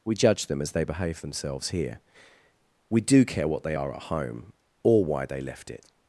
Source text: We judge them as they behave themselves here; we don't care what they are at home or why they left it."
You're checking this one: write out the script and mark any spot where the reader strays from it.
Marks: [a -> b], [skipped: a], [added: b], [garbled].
We judge them as they behave themselves here; we [don't -> do] care what they are at home or why they left it."